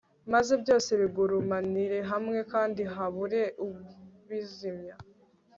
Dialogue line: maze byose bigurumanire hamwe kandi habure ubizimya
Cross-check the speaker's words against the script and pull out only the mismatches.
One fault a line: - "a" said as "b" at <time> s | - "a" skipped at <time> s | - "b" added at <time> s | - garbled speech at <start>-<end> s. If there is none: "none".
none